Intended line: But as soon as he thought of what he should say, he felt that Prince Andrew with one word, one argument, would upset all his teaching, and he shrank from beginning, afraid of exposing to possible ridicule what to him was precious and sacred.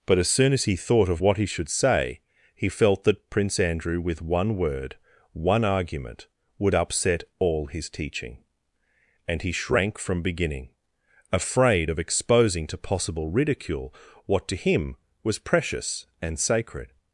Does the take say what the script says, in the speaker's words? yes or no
yes